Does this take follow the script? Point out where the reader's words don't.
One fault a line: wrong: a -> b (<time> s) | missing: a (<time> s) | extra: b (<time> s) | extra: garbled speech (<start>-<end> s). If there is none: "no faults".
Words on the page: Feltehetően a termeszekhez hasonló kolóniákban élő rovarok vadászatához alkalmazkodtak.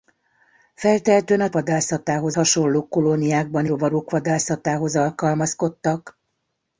wrong: termeszekhez -> vadászatához (1.5 s)
missing: élő (3.7 s)